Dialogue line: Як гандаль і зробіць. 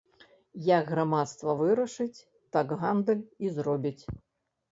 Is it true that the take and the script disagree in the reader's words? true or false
true